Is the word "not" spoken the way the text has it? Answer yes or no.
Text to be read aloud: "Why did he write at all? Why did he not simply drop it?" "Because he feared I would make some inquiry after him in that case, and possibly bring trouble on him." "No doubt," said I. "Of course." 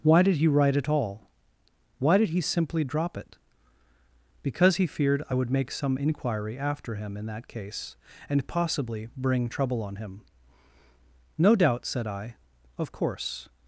no